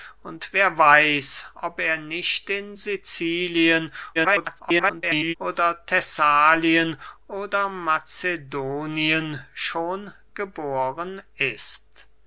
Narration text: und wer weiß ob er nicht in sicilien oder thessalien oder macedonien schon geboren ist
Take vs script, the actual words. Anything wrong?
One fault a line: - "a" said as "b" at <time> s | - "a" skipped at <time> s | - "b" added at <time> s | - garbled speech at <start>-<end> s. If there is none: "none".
- garbled speech at 4.1-5.3 s